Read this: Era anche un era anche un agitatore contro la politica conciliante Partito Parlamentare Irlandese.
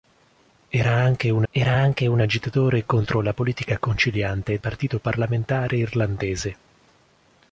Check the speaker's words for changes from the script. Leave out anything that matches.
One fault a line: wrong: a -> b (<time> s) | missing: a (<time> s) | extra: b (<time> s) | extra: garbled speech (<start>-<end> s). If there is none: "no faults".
no faults